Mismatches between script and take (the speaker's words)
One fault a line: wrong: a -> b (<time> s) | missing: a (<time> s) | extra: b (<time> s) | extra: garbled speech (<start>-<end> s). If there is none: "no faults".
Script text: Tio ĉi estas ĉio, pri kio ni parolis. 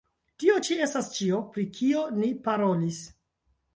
no faults